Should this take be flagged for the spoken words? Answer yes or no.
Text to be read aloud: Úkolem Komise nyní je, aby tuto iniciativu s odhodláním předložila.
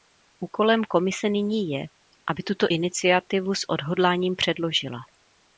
no